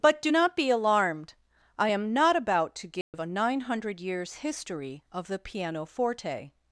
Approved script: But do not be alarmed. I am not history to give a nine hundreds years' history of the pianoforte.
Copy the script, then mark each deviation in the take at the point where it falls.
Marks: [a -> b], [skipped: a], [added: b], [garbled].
But do not be alarmed. I am not [history -> about] to give a nine [hundreds -> hundred] years' history of the pianoforte.